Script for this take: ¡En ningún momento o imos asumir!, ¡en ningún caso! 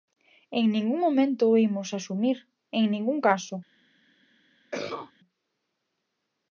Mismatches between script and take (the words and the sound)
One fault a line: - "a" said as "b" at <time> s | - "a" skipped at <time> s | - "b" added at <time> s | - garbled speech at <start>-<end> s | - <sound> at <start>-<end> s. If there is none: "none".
- cough at 4.7-5.1 s